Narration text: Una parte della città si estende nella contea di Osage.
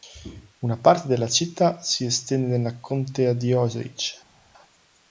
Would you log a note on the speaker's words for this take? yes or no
no